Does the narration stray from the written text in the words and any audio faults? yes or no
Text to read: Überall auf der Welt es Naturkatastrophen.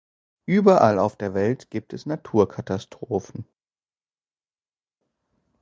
yes